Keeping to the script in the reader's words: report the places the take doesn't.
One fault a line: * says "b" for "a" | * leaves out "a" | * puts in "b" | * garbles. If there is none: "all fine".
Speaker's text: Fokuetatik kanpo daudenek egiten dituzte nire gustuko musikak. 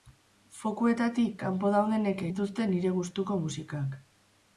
* leaves out "egiten"